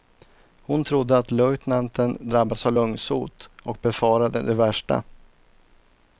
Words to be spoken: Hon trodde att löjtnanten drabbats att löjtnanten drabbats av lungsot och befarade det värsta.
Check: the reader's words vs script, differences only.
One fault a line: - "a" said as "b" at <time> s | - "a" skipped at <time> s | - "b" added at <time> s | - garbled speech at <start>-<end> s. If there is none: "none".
- "att löjtnanten drabbats" skipped at 2.7 s